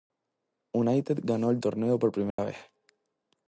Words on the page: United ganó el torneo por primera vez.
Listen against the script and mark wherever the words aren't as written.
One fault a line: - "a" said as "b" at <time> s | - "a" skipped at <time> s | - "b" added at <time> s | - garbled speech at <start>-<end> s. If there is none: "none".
none